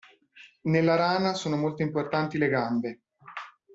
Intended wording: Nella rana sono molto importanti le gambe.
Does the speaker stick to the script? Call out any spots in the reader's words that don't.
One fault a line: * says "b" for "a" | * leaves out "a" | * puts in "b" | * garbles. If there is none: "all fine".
all fine